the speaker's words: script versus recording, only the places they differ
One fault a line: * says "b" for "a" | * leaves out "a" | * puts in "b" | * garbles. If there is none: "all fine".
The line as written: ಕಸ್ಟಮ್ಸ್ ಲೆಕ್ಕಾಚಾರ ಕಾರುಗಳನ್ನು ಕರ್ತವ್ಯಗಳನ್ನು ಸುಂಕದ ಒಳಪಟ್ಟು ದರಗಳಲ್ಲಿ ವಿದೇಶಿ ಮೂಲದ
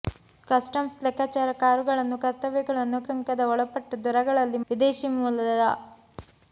all fine